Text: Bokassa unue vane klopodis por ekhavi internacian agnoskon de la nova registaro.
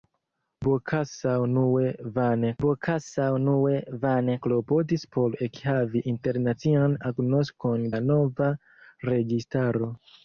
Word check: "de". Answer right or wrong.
wrong